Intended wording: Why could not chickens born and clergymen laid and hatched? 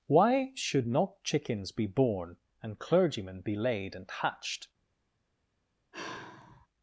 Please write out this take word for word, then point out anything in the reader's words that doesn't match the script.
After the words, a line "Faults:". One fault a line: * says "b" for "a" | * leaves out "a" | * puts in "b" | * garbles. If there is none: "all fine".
Why should not chickens be born and clergymen be laid and hatched?
Faults:
* says "should" for "could"
* puts in "be"
* puts in "be"